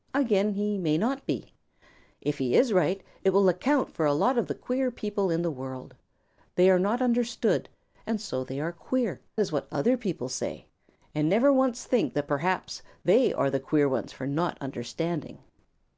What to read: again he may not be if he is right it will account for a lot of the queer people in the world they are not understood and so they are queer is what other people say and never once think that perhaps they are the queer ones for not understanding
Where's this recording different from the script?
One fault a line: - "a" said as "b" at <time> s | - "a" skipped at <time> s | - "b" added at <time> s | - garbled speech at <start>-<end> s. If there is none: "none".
none